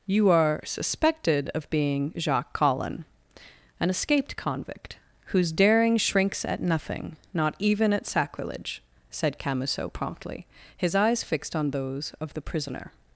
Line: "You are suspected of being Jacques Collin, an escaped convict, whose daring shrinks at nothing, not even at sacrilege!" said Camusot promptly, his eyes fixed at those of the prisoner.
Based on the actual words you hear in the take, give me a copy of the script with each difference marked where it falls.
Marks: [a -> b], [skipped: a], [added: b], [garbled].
"You are suspected of being Jacques Collin, an escaped convict, whose daring shrinks at nothing, not even at sacrilege!" said Camusot promptly, his eyes fixed [at -> on] those of the prisoner.